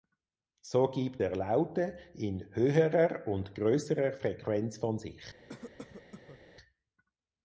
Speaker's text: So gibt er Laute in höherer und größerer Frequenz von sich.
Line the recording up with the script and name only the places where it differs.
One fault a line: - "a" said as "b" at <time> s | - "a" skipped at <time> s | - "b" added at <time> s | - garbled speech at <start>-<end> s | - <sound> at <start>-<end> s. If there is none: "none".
- cough at 5.5-6.4 s